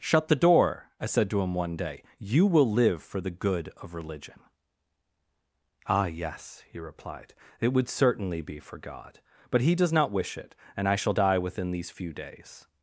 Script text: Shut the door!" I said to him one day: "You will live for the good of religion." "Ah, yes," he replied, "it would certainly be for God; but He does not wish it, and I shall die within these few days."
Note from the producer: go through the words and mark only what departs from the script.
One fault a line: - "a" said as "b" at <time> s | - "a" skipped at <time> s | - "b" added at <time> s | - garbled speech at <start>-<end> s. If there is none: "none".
none